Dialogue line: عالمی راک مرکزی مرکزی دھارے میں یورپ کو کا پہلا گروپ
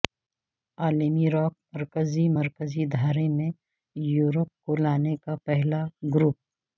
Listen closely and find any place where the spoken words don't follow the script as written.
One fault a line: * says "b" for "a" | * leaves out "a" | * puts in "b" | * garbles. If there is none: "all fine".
* puts in "لانے"